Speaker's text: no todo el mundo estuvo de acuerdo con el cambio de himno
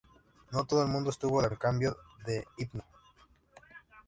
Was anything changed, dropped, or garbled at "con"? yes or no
yes